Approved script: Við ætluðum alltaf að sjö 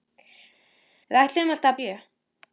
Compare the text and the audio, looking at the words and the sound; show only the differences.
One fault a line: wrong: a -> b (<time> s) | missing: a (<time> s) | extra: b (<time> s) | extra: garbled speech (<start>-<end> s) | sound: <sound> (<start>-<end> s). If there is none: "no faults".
no faults